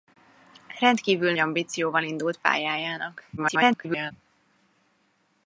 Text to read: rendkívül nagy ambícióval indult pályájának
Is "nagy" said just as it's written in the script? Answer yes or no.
no